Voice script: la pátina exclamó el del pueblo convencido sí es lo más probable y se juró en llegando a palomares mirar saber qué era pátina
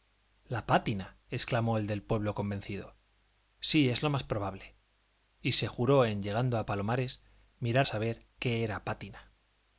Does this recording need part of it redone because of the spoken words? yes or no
no